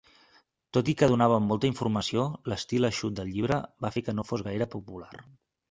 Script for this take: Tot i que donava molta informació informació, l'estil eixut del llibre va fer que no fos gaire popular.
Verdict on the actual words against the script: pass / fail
fail